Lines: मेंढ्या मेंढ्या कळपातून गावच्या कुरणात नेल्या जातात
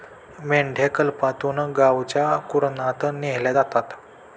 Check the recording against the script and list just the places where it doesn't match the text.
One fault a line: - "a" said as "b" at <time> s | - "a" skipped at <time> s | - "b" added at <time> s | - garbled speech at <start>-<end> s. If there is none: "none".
- "मेंढ्या" skipped at 0.9 s